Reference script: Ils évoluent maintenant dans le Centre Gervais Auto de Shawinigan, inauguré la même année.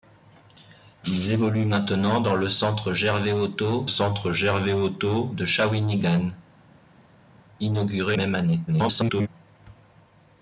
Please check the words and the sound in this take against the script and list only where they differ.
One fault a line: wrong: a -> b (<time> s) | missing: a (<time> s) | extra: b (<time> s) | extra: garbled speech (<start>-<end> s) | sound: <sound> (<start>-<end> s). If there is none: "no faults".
extra: Centre Gervais Auto (3.9 s)
missing: la (8.2 s)
extra: garbled speech (8.7-9.3 s)